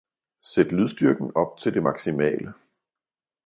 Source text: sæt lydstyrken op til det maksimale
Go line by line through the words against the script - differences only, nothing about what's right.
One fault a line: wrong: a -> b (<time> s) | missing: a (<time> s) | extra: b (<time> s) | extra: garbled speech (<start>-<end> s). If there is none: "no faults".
no faults